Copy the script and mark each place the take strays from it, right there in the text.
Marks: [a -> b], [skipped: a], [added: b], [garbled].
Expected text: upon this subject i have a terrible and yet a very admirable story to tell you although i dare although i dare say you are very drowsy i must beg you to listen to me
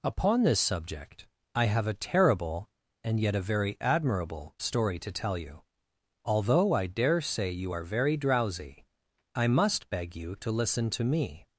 upon this subject i have a terrible and yet a very admirable story to tell you although i dare [skipped: although i dare] say you are very drowsy i must beg you to listen to me